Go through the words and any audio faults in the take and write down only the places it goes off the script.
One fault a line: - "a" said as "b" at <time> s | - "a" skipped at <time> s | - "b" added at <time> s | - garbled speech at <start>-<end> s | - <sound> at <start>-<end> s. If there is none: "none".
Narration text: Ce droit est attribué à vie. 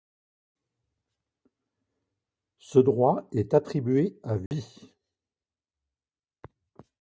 - dropout at 4.5-4.5 s